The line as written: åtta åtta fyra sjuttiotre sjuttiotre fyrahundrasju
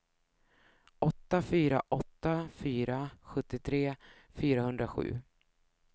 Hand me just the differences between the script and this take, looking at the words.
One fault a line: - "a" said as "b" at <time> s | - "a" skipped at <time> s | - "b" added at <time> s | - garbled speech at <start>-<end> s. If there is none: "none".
- "fyra" added at 1.4 s
- "sjuttiotre" skipped at 4.0 s